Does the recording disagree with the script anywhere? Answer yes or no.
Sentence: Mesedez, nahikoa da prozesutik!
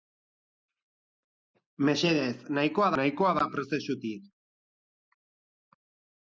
yes